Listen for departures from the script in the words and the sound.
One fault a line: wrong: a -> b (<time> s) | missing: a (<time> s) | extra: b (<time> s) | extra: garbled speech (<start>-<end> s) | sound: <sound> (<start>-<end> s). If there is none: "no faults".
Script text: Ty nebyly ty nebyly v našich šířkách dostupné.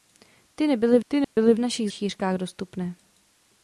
sound: dropout (1.2-1.4 s)